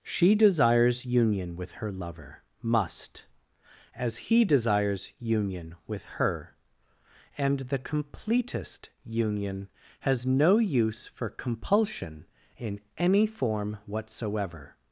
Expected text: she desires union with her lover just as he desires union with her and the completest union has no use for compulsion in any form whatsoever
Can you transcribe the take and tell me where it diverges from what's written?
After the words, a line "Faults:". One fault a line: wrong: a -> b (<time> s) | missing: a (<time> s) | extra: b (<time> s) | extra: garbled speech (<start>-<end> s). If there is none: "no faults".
she desires union with her lover must as he desires union with her and the completest union has no use for compulsion in any form whatsoever
Faults:
wrong: just -> must (2.6 s)